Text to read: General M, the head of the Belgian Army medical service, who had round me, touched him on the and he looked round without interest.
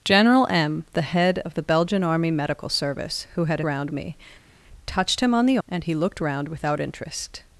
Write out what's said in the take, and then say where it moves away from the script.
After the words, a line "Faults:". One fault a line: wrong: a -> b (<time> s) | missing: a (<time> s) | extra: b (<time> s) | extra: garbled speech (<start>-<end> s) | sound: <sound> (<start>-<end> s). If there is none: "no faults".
General M, the head of the Belgian Army medical service, who had round me, touched him on the and he looked round without interest.
Faults:
no faults